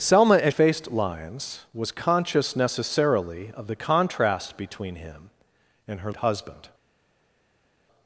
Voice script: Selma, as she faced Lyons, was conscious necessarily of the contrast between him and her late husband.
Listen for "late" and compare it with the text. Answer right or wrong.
wrong